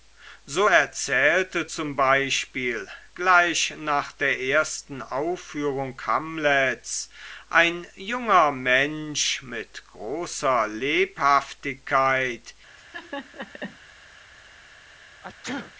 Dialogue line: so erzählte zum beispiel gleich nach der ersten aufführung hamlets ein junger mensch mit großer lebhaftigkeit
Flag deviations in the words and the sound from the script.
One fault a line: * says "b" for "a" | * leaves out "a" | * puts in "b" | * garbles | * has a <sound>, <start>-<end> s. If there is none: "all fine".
* has a laugh, 12.8-13.8 s
* has a sneeze, 15.2-15.7 s